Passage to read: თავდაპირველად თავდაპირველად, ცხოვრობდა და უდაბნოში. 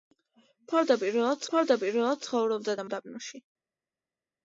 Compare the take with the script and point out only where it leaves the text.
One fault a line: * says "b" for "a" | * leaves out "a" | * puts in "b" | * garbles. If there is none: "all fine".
all fine